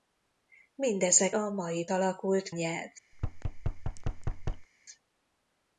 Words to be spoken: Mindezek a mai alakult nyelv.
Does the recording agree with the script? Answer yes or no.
yes